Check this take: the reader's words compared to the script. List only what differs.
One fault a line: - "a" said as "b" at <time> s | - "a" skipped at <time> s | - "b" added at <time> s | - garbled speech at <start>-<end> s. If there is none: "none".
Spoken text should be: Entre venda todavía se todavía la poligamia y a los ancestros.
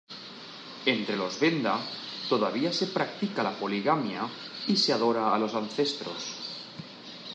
- "los" added at 1.1 s
- "todavía" said as "practica" at 2.9 s
- "se adora" added at 4.8 s